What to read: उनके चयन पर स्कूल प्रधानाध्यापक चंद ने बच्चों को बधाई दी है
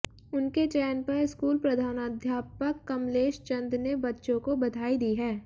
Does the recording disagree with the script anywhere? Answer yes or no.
yes